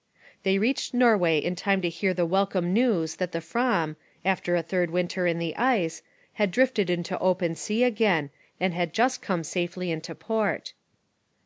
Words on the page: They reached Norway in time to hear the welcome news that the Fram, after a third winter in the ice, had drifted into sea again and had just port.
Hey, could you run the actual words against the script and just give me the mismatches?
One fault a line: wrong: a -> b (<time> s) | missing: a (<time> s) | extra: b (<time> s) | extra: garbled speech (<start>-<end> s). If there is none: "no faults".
extra: open (7.2 s)
extra: come safely into (9.2 s)